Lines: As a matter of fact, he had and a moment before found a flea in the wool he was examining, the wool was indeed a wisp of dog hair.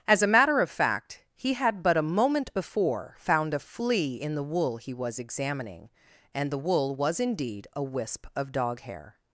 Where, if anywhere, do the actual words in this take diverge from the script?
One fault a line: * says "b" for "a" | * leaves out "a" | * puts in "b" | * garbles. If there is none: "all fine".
* says "but" for "and"
* puts in "and"